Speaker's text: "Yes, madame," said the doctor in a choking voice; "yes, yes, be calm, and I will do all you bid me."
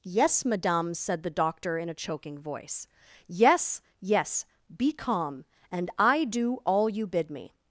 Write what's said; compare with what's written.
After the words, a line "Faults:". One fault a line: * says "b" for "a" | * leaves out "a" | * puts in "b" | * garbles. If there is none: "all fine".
"Yes, madame," said the doctor in a choking voice; "yes, yes, be calm, and I do all you bid me."
Faults:
* leaves out "will"